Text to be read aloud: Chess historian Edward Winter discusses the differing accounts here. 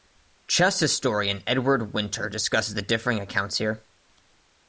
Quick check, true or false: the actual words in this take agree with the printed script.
true